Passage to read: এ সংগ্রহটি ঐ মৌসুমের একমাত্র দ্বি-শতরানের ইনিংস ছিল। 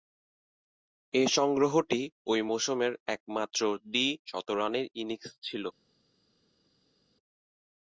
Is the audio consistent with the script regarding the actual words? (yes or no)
yes